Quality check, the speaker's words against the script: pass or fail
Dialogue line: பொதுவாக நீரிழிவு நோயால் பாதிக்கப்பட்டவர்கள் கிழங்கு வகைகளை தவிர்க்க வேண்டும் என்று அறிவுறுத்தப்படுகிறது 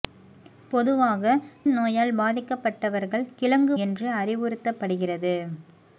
fail